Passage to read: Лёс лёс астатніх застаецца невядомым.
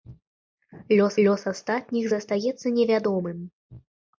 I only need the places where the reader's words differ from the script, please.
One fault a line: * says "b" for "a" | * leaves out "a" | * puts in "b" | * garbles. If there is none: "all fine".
all fine